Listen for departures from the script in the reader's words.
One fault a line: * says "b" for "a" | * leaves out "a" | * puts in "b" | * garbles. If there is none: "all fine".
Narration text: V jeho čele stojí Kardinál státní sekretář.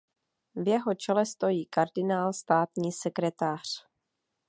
all fine